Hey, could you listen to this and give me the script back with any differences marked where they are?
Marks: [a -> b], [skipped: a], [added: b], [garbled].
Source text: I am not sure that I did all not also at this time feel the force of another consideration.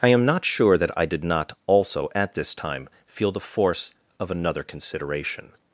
I am not sure that I did [skipped: all] not also at this time feel the force of another consideration.